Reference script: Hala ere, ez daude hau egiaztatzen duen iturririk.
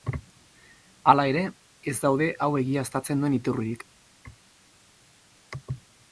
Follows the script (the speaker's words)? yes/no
yes